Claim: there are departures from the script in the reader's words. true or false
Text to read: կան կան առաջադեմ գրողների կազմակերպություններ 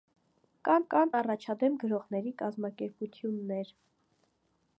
false